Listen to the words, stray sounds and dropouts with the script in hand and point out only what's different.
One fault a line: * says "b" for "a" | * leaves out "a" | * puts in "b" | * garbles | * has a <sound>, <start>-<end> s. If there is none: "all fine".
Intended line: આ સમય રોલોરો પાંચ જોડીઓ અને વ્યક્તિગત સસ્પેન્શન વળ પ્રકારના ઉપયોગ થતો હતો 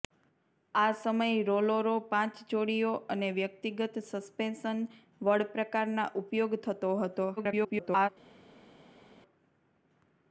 * garbles